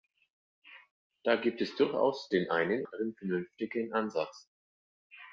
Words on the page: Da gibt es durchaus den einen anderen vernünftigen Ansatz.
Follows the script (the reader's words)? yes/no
yes